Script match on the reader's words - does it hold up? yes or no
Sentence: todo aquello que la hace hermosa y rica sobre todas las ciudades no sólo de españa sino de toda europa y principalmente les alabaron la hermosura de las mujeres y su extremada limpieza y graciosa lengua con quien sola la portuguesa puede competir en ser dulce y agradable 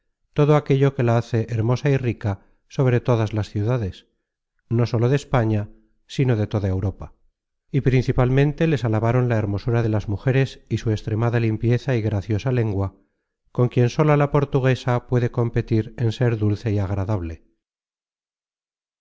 yes